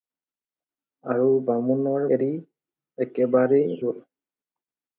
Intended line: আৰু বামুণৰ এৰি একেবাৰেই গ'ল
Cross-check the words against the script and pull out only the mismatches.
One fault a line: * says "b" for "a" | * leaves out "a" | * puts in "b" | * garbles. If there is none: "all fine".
all fine